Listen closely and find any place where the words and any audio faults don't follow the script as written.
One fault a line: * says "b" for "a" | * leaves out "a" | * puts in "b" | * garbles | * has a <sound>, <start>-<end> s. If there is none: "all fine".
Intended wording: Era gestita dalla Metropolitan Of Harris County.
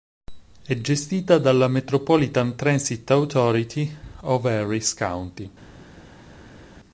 * says "È" for "Era"
* puts in "Transit Authority"